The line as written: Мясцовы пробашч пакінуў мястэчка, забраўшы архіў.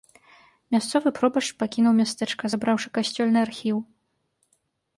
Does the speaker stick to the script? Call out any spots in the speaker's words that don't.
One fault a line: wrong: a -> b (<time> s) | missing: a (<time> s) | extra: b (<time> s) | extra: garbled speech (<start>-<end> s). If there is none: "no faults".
extra: касцёльны (3.0 s)